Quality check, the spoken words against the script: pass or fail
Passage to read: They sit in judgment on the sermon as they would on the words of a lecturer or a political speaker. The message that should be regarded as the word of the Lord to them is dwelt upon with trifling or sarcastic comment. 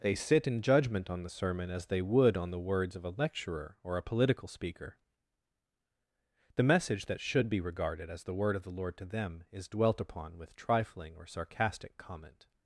pass